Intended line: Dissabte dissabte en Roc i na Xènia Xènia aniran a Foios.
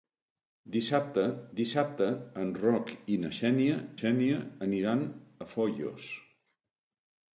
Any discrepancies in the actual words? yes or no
no